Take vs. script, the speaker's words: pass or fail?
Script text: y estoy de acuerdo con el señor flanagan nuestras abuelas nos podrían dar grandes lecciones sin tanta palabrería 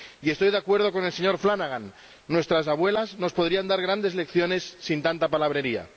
pass